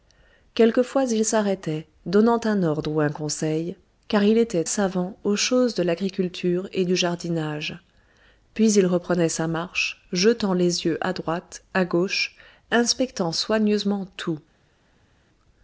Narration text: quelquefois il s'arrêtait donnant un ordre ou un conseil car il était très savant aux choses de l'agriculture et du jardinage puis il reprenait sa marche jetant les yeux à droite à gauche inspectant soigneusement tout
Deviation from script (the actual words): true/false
true